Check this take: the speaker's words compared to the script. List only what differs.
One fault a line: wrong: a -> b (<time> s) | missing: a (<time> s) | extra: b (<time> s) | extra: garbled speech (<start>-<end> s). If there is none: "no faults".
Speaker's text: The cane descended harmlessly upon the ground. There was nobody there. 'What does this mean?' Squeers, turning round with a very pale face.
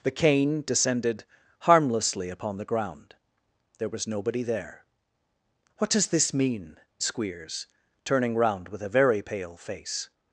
no faults